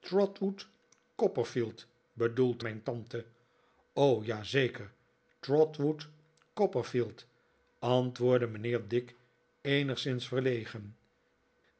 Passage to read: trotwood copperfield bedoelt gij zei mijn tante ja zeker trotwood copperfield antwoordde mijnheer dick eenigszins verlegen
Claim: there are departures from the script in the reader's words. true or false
true